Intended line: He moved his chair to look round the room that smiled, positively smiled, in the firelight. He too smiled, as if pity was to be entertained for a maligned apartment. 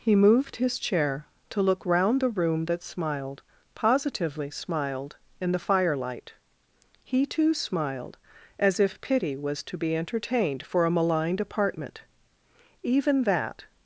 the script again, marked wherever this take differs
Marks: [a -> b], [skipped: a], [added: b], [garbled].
He moved his chair to look round the room that smiled, positively smiled, in the firelight. He too smiled, as if pity was to be entertained for a maligned apartment. [added: Even that]